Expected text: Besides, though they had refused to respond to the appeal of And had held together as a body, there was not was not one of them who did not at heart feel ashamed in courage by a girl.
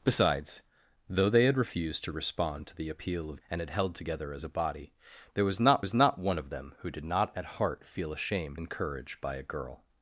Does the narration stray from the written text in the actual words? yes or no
no